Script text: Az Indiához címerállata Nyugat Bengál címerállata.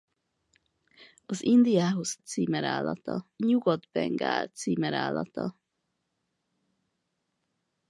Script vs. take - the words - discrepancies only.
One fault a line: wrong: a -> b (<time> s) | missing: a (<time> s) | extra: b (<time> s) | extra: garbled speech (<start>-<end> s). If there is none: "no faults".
no faults